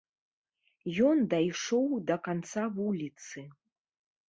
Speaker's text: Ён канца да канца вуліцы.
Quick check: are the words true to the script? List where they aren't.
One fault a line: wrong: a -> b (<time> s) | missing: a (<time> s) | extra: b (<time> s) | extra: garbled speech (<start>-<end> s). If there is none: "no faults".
wrong: канца -> дайшоў (1.4 s)